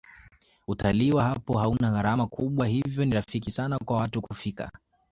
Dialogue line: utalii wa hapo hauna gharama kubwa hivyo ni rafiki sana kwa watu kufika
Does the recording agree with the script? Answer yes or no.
yes